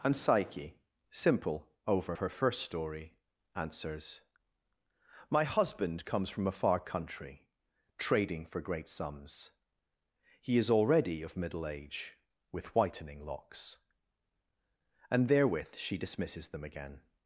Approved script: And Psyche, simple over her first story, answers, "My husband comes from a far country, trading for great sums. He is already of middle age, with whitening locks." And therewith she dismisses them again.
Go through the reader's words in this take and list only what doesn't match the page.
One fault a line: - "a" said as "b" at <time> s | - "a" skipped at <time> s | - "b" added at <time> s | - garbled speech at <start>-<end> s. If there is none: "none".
none